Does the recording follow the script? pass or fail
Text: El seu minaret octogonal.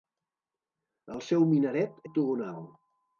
pass